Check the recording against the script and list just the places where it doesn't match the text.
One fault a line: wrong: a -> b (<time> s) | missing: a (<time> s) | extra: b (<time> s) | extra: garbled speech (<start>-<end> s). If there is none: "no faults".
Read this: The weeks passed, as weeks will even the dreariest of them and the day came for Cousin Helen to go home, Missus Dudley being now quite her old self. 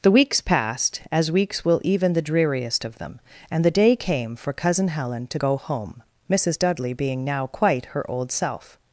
no faults